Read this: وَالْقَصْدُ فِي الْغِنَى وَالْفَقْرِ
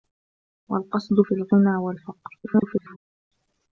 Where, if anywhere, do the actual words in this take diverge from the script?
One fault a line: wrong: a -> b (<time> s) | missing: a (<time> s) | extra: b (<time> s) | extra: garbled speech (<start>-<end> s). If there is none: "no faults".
extra: garbled speech (2.4-3.0 s)